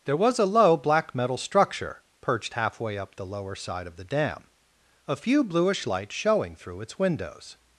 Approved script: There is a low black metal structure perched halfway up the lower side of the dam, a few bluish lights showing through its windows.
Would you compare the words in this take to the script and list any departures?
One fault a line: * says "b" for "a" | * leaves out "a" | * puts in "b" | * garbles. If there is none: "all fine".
* says "was" for "is"